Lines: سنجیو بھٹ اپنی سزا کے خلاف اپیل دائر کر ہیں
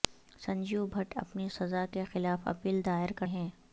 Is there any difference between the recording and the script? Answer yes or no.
no